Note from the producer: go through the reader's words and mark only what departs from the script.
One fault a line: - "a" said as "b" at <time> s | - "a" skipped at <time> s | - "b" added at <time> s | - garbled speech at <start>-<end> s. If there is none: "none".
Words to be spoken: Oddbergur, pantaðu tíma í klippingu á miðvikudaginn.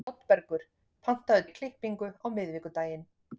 - "tíma" skipped at 1.4 s